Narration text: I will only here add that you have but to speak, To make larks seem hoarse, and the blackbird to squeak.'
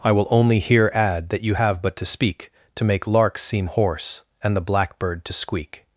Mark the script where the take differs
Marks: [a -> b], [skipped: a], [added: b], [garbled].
I will only here add that you have but to speak, To make larks seem hoarse, and the blackbird to squeak.'